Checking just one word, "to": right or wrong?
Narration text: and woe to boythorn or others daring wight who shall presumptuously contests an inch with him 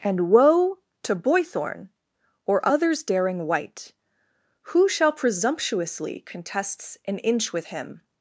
right